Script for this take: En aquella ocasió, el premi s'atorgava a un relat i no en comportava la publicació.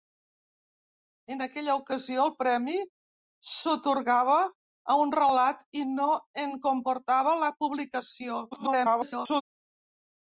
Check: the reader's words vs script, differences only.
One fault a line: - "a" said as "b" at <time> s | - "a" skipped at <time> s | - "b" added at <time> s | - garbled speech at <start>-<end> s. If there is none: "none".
- garbled speech at 8.5-9.4 s